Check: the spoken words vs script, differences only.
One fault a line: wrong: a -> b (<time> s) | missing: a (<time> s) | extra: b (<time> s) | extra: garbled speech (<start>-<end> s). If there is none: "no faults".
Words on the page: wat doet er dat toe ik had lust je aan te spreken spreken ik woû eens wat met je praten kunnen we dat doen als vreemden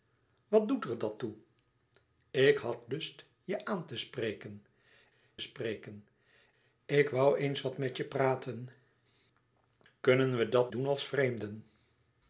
no faults